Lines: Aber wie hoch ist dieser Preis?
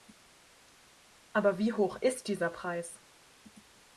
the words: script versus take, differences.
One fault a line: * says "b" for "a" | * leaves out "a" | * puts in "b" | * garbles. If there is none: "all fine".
all fine